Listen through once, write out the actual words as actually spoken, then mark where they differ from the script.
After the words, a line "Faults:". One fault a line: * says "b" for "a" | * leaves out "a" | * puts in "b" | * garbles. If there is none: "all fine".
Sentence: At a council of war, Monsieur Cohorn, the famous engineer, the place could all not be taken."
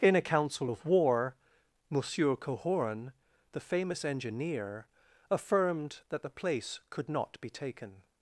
In a council of war, Monsieur Cohorn, the famous engineer, affirmed that the place could not be taken."
Faults:
* says "In" for "At"
* puts in "affirmed that"
* leaves out "all"